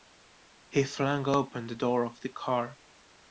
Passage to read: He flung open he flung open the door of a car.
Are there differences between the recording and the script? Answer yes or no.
yes